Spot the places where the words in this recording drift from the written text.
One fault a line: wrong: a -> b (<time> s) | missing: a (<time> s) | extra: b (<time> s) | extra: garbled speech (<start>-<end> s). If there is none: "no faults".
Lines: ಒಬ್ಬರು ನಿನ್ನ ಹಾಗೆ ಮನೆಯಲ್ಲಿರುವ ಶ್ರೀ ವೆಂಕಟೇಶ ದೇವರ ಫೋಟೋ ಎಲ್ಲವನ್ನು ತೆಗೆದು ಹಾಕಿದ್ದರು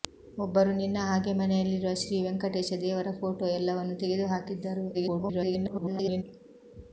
extra: garbled speech (4.9-6.2 s)